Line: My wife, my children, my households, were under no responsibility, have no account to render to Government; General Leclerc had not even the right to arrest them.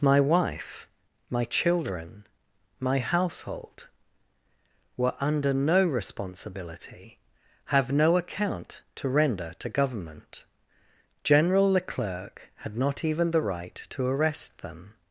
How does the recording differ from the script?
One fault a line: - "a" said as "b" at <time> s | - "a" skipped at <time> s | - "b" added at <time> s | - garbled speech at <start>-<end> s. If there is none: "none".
- "households" said as "household" at 3.0 s